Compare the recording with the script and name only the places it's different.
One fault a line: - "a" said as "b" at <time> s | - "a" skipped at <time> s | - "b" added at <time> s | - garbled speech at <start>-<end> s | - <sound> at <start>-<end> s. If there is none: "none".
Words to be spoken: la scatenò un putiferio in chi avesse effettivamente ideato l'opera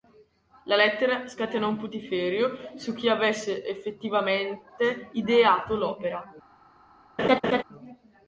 - "lettera" added at 0.8 s
- "in" said as "su" at 2.8 s
- laugh at 7.2-7.6 s